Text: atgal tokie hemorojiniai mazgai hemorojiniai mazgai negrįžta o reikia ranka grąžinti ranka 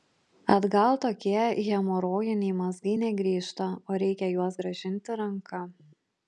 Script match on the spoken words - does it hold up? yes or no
no